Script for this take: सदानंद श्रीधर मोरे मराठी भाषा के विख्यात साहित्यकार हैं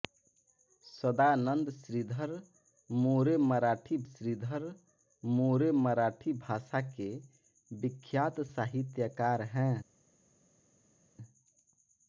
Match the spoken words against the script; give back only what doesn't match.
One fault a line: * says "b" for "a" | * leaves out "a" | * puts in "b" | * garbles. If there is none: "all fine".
* puts in "श्रीधर मोरे मराठी"